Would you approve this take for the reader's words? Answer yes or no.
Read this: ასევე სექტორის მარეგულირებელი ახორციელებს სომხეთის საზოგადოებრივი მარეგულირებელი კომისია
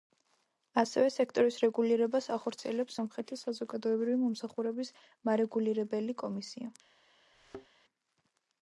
no